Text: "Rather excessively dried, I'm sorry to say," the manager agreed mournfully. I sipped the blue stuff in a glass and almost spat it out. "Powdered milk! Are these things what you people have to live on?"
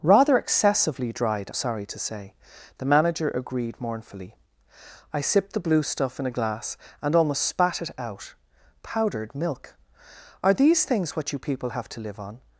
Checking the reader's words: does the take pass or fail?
fail